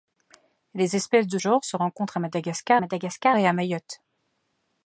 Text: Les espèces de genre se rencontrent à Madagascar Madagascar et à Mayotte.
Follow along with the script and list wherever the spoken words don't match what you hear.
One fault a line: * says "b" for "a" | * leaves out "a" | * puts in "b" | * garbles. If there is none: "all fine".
all fine